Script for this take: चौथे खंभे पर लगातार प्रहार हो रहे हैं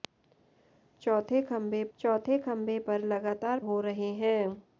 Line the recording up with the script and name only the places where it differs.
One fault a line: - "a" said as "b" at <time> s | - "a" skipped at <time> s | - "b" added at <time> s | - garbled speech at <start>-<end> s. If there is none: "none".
- "चौथे खंभे" added at 2.0 s
- "प्रहार" skipped at 3.6 s